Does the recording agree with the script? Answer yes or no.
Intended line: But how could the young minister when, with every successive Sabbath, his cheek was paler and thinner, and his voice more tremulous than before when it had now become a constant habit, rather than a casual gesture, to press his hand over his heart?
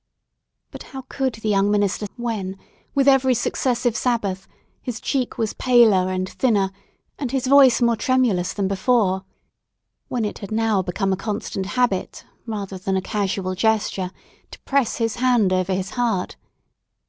yes